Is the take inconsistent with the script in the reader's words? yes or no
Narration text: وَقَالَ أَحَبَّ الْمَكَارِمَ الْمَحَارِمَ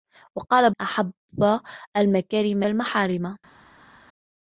no